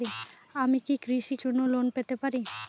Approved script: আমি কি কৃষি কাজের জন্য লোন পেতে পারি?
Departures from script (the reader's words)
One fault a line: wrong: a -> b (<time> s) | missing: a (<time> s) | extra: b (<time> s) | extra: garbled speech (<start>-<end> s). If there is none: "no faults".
missing: কাজের (1.4 s)